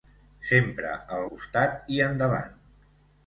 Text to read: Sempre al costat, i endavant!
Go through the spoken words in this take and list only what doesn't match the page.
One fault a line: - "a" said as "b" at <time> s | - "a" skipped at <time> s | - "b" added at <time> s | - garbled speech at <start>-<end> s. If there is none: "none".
none